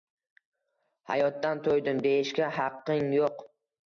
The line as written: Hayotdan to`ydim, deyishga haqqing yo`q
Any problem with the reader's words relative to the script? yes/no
no